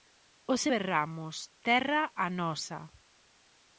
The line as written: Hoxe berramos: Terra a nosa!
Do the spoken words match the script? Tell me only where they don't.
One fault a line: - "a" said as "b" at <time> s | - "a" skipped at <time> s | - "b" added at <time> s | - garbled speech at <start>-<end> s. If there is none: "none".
none